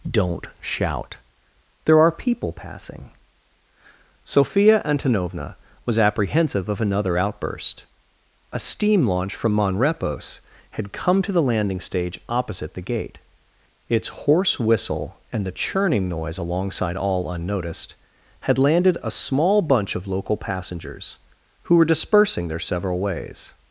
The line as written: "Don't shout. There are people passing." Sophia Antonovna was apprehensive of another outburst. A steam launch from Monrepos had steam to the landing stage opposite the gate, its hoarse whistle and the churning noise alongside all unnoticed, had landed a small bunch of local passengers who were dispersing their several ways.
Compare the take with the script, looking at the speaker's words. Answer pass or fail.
fail